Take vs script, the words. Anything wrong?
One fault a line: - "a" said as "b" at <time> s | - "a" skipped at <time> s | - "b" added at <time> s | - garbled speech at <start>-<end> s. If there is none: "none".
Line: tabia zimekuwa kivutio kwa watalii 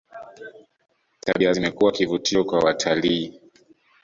none